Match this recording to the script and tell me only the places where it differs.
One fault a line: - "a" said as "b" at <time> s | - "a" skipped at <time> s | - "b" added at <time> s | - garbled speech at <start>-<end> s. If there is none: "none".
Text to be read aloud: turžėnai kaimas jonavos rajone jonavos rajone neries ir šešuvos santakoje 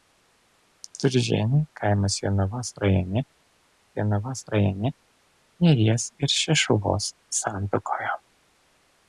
none